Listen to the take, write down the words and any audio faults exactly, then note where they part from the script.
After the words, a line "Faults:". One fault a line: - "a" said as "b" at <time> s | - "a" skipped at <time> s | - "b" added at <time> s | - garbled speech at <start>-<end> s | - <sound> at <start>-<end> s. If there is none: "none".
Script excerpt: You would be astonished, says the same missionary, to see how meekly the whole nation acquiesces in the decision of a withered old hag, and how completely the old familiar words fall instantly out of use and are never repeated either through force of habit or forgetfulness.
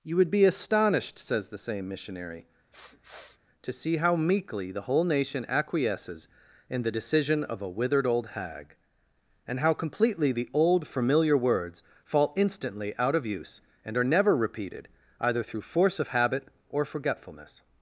You would be astonished, says the same missionary, to see how meekly the whole nation acquiesces in the decision of a withered old hag, and how completely the old familiar words fall instantly out of use and are never repeated either through force of habit or forgetfulness.
Faults:
- sniff at 2.7-3.4 s